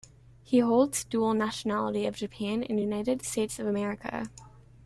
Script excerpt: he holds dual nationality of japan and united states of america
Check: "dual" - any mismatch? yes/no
no